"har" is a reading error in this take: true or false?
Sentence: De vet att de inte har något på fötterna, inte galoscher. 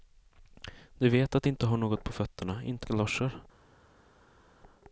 false